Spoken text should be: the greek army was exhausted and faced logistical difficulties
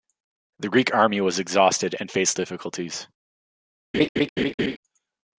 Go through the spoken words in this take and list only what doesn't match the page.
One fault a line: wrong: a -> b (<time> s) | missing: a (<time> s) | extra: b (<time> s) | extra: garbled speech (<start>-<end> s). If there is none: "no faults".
missing: logistical (2.4 s)